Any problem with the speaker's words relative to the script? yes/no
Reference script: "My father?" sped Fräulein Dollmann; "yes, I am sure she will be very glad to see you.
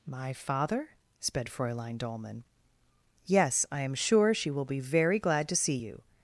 no